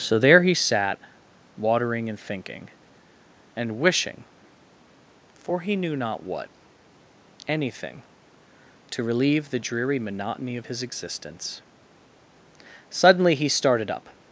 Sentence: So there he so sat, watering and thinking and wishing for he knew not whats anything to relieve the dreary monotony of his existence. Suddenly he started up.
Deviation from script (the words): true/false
true